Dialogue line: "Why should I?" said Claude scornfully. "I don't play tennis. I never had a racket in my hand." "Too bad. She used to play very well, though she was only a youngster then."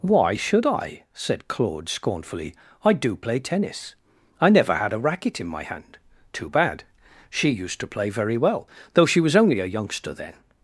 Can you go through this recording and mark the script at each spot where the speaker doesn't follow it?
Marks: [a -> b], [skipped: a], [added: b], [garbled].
"Why should I?" said Claude scornfully. "I [don't -> do] play tennis. I never had a racket in my hand." "Too bad. She used to play very well, though she was only a youngster then."